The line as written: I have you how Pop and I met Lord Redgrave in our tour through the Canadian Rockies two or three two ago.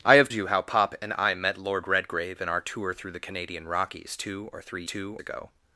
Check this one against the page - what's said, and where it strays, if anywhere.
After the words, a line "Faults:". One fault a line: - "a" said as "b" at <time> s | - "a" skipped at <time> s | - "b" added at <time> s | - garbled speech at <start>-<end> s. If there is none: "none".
I have you how Pop and I met Lord Redgrave in our tour through the Canadian Rockies two or three two ago.
Faults:
none